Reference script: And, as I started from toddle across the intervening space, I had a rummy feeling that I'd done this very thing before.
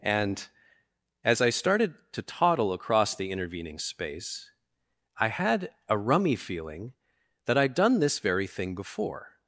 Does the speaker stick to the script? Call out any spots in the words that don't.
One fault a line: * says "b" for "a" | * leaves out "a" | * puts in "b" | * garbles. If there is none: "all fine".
* says "to" for "from"